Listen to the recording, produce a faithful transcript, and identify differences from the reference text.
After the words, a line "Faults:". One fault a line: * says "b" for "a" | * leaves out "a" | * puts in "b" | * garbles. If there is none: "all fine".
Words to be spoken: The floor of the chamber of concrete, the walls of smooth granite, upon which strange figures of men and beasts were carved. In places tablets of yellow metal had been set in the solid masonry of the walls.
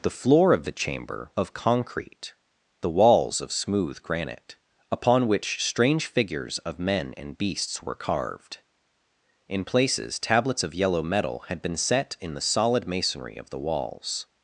The floor of the chamber of concrete, the walls of smooth granite, upon which strange figures of men and beasts were carved. In places tablets of yellow metal had been set in the solid masonry of the walls.
Faults:
all fine